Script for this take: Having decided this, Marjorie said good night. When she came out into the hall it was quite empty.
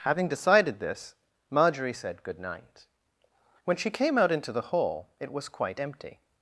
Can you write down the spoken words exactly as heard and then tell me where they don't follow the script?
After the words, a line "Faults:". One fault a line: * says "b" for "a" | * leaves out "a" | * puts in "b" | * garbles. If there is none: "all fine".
Having decided this, Marjorie said good night. When she came out into the hall it was quite empty.
Faults:
all fine